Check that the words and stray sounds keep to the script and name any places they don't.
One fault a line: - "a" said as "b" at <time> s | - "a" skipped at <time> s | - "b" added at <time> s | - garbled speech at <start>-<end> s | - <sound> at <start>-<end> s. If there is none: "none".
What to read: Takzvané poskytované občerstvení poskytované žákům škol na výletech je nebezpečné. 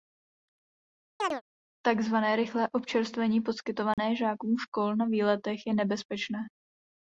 - chirp at 1.2-1.4 s
- "poskytované" said as "rychlé" at 2.4 s
- dropout at 3.9-4.0 s